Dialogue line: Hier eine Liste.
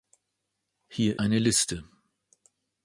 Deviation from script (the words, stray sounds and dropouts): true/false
false